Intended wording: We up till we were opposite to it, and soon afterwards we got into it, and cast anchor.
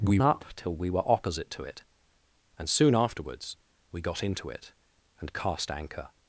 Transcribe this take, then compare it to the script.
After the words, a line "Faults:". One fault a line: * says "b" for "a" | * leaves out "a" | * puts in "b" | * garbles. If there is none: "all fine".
We up till we were opposite to it, and soon afterwards we got into it, and cast anchor.
Faults:
all fine